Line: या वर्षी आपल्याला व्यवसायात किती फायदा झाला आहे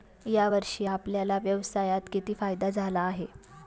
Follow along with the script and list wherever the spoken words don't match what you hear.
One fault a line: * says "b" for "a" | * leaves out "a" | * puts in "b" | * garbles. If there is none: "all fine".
all fine